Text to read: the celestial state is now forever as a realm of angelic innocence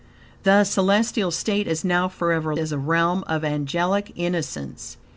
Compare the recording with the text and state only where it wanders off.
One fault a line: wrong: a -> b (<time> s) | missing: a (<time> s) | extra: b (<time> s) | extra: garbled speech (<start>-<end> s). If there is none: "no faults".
no faults